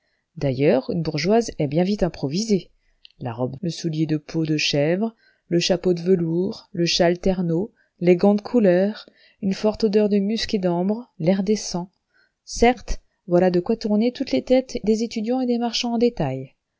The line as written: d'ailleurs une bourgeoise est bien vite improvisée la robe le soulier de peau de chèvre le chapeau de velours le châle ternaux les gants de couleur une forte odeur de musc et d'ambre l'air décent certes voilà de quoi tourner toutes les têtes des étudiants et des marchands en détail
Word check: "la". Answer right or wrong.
right